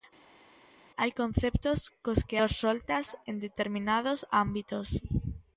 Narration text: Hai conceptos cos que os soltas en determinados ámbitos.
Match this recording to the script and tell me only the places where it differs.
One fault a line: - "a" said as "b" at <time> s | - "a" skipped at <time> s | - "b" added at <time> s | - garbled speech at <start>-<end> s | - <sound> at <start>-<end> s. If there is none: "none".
none